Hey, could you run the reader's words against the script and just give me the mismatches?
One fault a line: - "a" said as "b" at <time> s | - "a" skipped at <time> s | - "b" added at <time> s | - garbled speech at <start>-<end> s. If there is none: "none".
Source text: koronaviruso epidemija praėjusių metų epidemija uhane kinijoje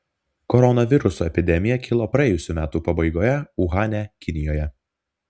- "kilo" added at 1.9 s
- "epidemija" said as "pabaigoje" at 2.9 s